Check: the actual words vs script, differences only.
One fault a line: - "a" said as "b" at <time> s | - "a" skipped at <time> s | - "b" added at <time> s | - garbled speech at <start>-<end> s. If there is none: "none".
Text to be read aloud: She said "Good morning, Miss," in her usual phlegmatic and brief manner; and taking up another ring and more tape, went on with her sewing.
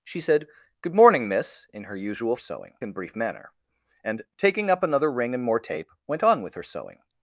- "phlegmatic" said as "sewing" at 2.4 s